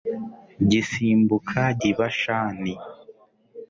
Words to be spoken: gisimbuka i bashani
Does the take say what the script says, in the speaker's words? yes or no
yes